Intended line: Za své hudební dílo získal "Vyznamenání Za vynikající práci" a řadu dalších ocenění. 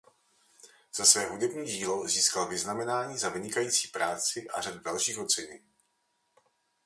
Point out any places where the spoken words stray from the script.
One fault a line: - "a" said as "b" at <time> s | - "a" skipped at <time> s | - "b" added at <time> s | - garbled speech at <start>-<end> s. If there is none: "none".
none